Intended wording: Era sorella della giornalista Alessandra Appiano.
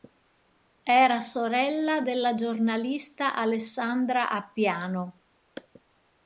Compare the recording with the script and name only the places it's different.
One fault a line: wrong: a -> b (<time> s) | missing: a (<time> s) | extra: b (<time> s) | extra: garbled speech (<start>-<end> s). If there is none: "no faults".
no faults